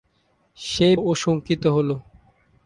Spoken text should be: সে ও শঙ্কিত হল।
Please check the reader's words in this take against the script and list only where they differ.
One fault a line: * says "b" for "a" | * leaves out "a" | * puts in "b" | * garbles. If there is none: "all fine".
all fine